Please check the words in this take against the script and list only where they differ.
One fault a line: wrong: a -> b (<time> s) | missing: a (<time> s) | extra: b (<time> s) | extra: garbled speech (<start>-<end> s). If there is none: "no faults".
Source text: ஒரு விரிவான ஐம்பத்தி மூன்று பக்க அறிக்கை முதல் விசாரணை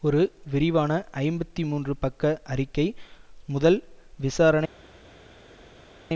no faults